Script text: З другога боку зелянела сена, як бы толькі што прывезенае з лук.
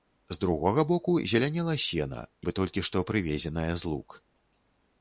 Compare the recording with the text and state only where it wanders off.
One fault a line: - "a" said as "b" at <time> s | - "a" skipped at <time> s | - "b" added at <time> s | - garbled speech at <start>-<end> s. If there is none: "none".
- "як" skipped at 2.2 s